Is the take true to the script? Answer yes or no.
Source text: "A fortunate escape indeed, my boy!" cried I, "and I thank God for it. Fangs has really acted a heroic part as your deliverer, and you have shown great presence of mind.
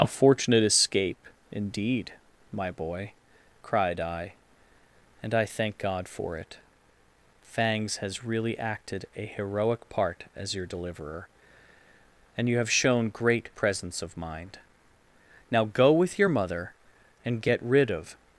no